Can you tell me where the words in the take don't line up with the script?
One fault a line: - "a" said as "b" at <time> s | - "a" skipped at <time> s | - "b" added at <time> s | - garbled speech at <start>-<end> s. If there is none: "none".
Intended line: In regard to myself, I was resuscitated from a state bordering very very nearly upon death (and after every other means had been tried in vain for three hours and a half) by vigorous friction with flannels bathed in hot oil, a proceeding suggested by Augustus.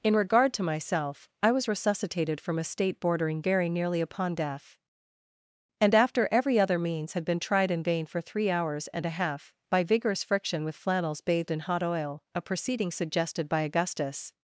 - "very" skipped at 3.7 s